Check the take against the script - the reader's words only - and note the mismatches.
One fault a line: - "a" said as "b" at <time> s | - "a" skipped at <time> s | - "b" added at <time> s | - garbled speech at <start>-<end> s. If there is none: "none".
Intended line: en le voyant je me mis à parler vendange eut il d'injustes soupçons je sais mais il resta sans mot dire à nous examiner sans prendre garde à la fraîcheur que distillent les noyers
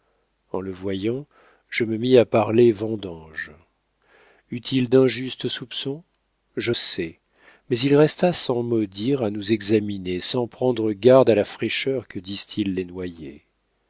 none